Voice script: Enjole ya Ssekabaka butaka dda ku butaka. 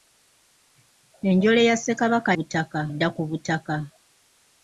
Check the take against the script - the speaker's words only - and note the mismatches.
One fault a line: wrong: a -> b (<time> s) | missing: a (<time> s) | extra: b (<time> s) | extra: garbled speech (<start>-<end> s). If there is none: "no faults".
no faults